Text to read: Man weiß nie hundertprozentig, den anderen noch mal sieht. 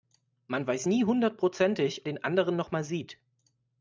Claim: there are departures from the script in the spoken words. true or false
false